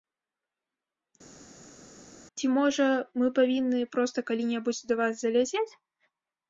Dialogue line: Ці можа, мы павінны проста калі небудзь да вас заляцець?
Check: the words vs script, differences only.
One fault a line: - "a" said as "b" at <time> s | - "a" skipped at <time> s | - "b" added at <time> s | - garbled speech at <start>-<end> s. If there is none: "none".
none